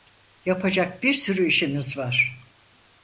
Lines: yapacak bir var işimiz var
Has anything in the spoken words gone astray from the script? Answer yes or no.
yes